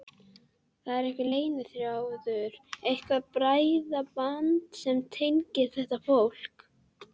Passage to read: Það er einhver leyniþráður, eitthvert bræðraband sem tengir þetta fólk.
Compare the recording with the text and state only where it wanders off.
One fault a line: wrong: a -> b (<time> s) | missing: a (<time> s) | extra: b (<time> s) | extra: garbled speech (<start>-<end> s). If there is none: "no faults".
no faults